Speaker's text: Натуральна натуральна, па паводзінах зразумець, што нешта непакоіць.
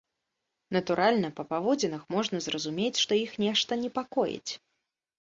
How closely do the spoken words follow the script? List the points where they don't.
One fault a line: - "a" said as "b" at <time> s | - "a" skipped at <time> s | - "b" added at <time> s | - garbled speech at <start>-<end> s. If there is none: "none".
- "натуральна" skipped at 1.3 s
- "можна" added at 2.1 s
- "іх" added at 3.3 s